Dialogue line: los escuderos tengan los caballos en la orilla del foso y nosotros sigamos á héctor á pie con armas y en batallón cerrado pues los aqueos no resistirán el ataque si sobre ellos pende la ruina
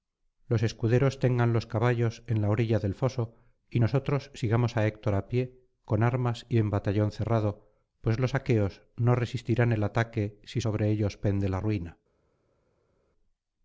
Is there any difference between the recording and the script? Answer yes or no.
no